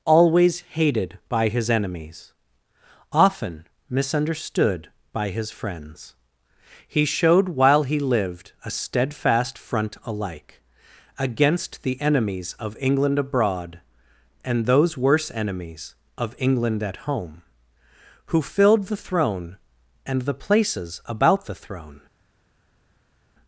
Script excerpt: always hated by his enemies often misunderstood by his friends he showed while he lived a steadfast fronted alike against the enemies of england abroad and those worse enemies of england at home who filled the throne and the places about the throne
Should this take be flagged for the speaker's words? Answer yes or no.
yes